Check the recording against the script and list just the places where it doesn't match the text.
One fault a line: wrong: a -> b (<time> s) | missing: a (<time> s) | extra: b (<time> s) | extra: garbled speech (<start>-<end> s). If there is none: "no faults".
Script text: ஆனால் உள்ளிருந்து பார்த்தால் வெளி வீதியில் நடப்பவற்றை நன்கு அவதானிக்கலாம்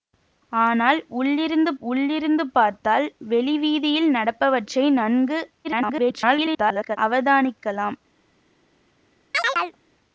extra: உள்ளிருந்து (1.8 s)
extra: garbled speech (5.6-7.0 s)